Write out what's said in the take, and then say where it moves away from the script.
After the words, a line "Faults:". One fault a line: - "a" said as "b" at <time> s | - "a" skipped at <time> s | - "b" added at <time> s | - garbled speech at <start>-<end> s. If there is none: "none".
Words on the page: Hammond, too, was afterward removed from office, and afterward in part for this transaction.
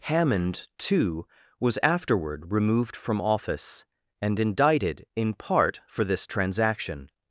Hammond, too, was afterward removed from office, and indicted in part for this transaction.
Faults:
- "afterward" said as "indicted" at 4.4 s